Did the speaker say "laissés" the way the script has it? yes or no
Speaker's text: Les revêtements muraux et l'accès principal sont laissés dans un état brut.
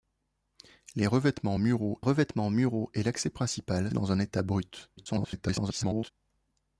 no